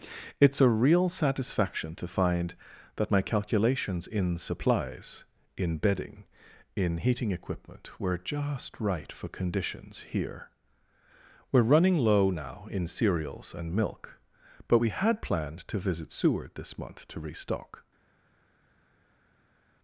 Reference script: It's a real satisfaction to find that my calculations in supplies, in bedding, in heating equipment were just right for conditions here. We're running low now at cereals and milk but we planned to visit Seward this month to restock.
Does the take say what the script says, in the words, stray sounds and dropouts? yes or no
no